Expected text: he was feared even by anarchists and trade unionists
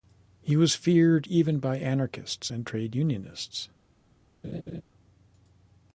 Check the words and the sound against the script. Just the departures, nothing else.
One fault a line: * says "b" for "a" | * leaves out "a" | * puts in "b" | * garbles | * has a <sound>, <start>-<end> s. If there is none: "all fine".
* has a laugh, 4.4-4.8 s